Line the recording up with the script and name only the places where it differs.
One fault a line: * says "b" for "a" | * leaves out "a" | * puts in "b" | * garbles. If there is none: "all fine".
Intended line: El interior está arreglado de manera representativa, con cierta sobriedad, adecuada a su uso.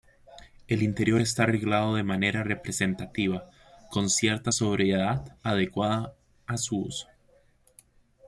all fine